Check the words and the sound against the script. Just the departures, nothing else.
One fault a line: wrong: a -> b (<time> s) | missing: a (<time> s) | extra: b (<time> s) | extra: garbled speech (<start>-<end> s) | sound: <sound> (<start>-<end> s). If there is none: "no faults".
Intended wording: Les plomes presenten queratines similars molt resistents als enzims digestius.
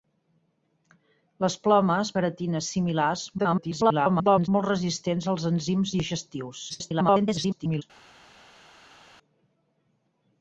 missing: presenten (2.1 s)
extra: garbled speech (3.4-4.5 s)
extra: garbled speech (6.7-7.8 s)